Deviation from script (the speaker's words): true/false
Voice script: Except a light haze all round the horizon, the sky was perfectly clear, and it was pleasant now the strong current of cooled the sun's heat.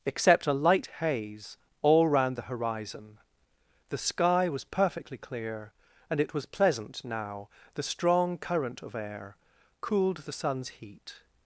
true